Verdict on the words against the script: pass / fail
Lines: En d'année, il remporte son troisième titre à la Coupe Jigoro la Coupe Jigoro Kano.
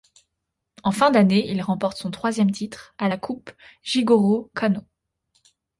fail